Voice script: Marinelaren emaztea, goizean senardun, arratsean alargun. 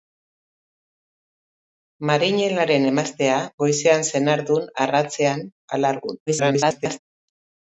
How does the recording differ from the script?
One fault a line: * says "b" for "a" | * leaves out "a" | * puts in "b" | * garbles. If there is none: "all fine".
* garbles